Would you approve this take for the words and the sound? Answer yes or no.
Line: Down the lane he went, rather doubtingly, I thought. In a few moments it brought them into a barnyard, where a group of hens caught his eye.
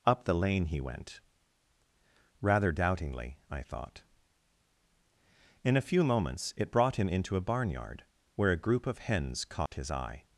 no